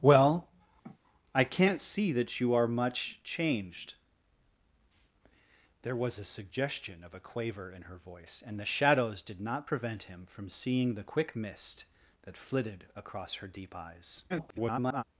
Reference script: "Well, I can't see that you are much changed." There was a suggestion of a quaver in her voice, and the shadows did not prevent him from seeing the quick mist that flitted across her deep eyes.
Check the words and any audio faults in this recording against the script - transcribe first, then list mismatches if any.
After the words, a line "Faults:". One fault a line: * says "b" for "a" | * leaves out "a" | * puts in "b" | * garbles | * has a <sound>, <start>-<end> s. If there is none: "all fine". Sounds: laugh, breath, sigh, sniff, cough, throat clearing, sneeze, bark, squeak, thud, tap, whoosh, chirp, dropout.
"Well, I can't see that you are much changed." There was a suggestion of a quaver in her voice, and the shadows did not prevent him from seeing the quick mist that flitted across her deep eyes. [garbled]
Faults:
* has a sniff, 0.8-1.0 s
* garbles